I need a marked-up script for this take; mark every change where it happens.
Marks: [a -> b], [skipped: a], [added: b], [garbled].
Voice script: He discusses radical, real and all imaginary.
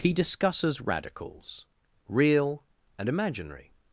He discusses [radical, -> radicals] real and [skipped: all] imaginary.